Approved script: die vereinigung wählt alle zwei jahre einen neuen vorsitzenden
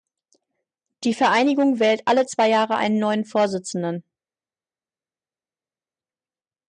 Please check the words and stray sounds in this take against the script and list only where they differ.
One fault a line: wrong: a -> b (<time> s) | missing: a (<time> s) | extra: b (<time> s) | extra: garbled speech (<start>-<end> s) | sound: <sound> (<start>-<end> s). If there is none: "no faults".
no faults